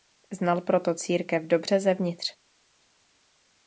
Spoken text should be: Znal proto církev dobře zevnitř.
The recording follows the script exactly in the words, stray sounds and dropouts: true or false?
true